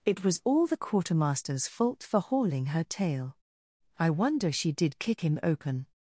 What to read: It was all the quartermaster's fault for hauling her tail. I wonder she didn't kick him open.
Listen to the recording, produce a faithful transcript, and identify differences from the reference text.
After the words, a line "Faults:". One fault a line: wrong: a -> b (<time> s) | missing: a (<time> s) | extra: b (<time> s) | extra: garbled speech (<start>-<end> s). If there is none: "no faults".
It was all the quartermaster's fault for hauling her tail. I wonder she did kick him open.
Faults:
wrong: didn't -> did (4.7 s)